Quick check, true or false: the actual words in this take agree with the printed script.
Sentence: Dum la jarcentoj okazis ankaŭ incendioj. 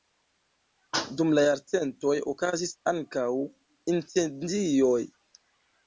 true